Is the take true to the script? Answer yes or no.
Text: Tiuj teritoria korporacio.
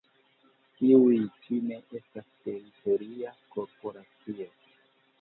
no